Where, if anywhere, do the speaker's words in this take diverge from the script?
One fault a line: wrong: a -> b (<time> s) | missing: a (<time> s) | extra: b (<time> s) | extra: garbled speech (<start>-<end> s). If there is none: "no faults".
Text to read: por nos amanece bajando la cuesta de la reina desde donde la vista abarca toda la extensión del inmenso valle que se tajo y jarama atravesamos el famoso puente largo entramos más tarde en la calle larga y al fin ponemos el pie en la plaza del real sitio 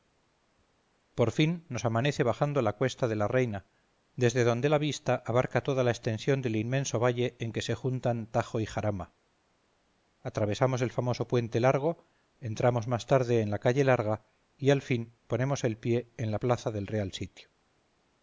extra: fin (1.3 s)
extra: en (7.4 s)
extra: juntan (7.8 s)